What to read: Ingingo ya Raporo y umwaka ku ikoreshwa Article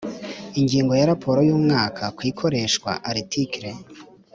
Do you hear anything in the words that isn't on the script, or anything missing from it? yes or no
no